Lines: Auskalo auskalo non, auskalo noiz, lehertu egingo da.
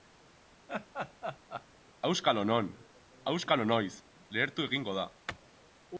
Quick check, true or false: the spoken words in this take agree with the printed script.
false